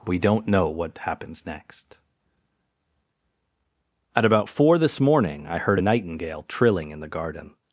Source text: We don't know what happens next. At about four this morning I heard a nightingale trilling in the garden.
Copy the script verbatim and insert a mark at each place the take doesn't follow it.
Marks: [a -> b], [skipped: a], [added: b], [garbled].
We don't know what happens next. At about four this morning I heard a nightingale trilling in the garden.